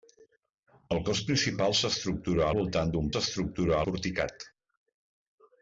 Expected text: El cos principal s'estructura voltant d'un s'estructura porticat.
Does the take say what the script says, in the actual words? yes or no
yes